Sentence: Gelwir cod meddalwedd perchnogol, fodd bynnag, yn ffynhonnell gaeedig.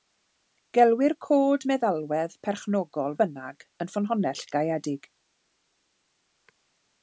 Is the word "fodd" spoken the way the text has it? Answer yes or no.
no